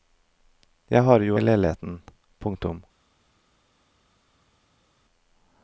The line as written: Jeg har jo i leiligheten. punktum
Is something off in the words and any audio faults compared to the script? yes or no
no